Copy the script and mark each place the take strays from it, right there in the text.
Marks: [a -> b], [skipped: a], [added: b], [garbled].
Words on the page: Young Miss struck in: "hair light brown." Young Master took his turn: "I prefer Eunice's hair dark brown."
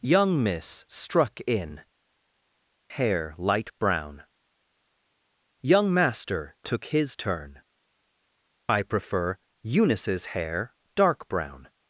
Young Miss struck in: "hair light brown." Young Master took his turn: "I prefer Eunice's hair dark brown."